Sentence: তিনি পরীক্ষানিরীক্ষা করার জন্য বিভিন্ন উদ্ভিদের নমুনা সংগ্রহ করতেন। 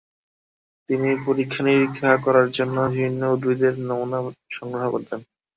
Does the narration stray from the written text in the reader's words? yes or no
no